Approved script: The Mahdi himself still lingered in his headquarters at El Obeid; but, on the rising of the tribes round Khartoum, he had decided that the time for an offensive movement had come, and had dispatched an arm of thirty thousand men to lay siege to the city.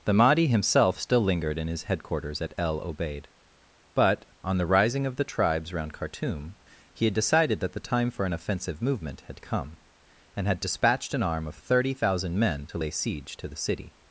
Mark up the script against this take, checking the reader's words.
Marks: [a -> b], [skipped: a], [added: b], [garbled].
The Mahdi himself still lingered in his headquarters at El Obeid; but, on the rising of the tribes round Khartoum, he had decided that the time for an offensive movement had come, and had dispatched an arm of thirty thousand men to lay siege to the city.